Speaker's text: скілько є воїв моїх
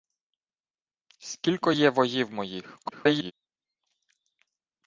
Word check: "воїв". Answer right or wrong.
right